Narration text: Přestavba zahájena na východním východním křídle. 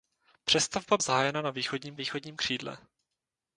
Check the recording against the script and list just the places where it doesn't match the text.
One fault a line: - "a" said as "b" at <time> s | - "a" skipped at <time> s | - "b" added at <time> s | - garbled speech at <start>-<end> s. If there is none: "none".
none